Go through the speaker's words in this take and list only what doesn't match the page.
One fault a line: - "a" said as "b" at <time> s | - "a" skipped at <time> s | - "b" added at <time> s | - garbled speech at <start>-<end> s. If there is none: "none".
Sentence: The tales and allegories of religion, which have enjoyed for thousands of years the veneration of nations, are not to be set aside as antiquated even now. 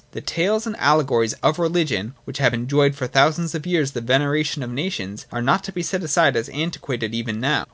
none